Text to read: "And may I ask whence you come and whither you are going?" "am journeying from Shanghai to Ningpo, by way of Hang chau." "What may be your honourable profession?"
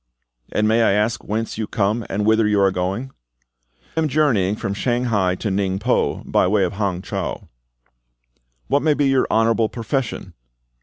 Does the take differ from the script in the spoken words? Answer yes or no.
no